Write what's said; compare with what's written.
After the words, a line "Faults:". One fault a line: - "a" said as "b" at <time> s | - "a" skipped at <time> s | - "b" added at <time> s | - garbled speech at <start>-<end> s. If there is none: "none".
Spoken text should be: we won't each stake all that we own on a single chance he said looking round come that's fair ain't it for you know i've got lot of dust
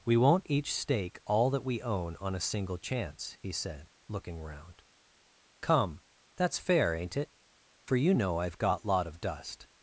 we won't each stake all that we own on a single chance he said looking round come that's fair ain't it for you know i've got lot of dust
Faults:
none